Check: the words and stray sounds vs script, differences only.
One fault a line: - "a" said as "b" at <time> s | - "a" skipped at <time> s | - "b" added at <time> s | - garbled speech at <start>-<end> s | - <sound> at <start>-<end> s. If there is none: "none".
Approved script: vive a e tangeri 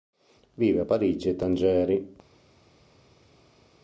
- "parigi" added at 0.8 s